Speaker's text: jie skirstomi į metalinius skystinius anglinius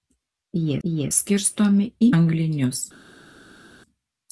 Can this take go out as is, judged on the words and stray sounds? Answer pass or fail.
fail